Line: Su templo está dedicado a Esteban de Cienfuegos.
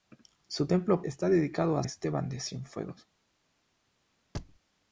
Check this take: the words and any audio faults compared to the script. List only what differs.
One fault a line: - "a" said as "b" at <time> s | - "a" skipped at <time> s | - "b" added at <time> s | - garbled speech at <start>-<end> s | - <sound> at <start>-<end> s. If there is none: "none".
- thud at 4.3-4.6 s